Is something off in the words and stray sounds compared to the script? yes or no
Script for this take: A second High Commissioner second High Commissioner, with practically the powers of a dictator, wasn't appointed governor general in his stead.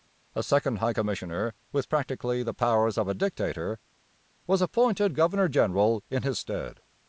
yes